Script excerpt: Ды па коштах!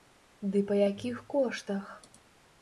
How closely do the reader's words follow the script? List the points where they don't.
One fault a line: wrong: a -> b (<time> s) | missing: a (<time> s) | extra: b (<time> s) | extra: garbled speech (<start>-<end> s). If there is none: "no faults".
extra: якіх (0.9 s)